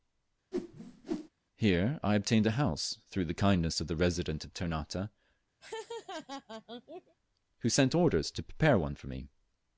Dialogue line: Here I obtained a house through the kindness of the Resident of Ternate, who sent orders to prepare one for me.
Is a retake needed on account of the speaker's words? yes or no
no